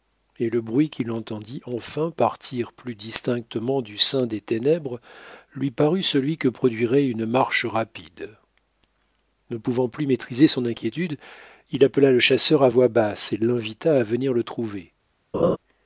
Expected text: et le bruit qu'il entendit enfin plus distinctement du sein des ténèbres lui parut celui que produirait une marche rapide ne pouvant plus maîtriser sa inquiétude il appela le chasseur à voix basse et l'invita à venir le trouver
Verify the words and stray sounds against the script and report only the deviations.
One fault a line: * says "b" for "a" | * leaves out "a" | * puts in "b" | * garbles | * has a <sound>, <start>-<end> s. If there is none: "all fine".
* puts in "partir"
* says "son" for "sa"
* has a laugh, 15.3-15.6 s